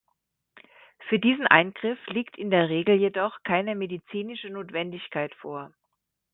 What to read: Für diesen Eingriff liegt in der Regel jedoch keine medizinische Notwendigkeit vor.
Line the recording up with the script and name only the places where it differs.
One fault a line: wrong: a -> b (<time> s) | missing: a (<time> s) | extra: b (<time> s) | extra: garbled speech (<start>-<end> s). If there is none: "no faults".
no faults